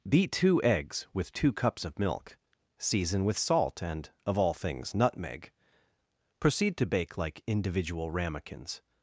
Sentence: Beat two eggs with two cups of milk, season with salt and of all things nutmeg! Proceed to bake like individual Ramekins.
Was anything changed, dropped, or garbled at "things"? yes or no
no